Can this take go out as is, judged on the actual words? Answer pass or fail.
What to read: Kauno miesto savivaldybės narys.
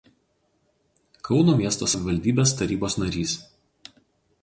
fail